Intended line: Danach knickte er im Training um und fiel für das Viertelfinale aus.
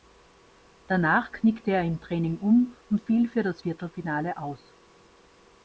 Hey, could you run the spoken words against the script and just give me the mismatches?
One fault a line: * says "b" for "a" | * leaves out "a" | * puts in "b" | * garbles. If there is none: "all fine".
all fine